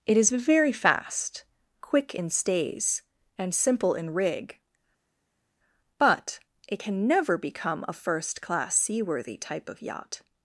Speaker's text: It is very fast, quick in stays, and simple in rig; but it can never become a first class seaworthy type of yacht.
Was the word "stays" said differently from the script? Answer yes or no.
no